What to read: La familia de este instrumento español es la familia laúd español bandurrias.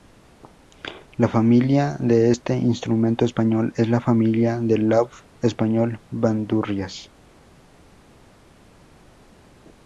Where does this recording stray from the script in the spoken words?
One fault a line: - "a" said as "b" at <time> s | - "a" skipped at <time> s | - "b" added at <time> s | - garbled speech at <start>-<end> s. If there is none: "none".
- "del" added at 4.6 s